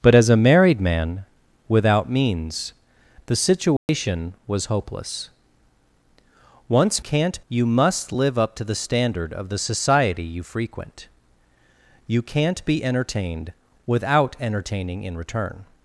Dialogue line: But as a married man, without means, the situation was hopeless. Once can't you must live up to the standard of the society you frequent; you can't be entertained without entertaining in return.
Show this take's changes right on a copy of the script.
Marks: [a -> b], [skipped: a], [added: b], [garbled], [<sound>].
But as a married man, without means, the situation [dropout] was hopeless. Once can't you must live up to the standard of the society you frequent; you can't be entertained without entertaining in return.